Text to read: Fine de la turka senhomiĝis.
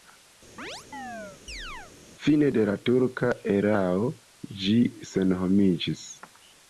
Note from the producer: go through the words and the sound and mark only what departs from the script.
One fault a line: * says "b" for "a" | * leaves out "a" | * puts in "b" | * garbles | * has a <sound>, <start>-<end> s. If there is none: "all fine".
* has a chirp, 0.6-1.9 s
* puts in "erao ĝi"